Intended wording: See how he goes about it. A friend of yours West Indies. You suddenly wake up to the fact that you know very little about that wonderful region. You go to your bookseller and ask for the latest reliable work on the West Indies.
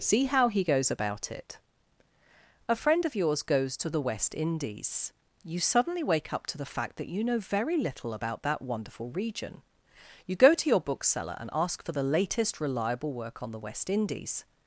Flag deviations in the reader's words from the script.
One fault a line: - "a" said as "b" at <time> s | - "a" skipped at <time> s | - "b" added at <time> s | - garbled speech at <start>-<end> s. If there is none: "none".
- "goes to the" added at 3.4 s